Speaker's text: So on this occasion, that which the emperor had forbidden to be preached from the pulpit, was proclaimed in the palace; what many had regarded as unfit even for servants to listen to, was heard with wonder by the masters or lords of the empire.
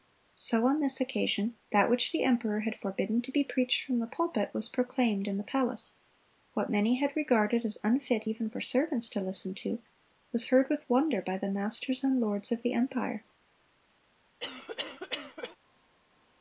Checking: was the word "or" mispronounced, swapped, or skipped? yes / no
yes